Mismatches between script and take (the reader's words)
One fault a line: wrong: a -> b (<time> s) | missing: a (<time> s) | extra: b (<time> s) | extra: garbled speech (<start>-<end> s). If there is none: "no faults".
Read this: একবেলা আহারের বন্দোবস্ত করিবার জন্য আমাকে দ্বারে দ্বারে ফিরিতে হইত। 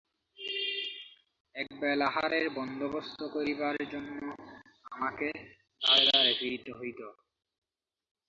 no faults